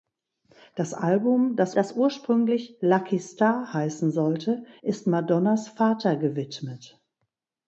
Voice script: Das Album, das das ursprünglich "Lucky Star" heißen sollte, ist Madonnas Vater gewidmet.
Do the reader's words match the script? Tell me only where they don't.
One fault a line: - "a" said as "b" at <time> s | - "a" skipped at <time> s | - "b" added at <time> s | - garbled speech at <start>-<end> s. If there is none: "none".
none